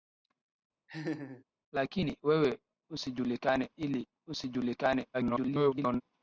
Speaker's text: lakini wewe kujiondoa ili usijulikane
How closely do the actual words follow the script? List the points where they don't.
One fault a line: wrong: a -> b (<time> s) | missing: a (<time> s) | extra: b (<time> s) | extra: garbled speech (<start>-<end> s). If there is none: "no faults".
wrong: kujiondoa -> usijulikane (2.9 s)
extra: garbled speech (5.1-6.0 s)